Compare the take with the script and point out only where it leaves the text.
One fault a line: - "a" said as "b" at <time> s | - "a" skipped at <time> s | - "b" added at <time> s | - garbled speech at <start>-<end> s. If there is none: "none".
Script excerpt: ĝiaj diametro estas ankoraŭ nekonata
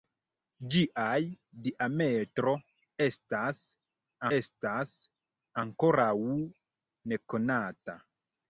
- "estas" added at 4.4 s